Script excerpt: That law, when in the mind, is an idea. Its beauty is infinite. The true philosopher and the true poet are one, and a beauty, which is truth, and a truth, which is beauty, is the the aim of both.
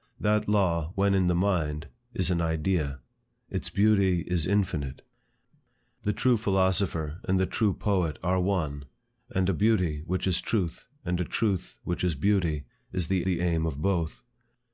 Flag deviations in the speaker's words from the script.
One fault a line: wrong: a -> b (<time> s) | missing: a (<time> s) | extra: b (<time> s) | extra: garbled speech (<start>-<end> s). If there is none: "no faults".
no faults